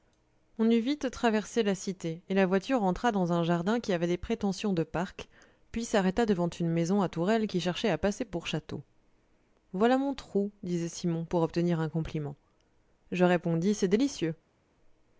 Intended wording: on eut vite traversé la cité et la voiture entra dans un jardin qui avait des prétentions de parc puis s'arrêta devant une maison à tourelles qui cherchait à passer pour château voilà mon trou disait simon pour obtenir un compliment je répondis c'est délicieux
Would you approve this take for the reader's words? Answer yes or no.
yes